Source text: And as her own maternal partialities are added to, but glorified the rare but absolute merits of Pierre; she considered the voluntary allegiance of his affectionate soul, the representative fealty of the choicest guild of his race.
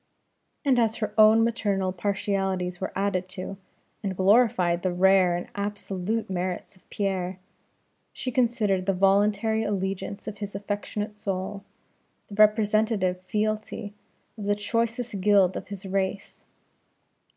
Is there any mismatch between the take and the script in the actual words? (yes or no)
yes